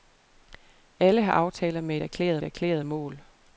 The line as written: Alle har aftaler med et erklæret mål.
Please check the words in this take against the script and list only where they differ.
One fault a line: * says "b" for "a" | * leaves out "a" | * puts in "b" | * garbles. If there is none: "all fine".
* puts in "erklæret"